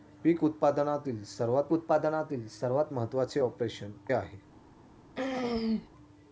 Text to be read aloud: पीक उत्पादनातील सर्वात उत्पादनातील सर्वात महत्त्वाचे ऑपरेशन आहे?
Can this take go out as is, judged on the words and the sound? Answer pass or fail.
fail